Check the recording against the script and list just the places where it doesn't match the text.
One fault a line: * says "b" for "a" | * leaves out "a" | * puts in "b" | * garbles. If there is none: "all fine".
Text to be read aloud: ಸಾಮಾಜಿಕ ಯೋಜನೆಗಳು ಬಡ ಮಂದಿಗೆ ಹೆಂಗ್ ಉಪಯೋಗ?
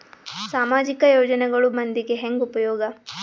* leaves out "ಬಡ"